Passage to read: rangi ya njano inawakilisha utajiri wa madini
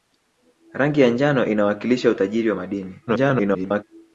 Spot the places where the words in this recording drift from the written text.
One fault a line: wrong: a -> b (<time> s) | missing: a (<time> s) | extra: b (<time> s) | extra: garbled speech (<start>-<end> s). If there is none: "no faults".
extra: garbled speech (3.1-3.8 s)